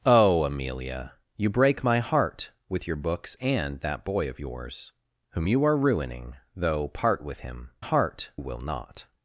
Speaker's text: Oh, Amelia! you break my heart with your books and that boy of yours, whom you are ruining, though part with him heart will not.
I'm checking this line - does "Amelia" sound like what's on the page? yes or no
yes